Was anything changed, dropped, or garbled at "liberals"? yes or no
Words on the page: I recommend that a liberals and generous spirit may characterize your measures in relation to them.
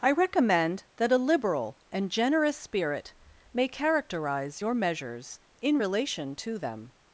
yes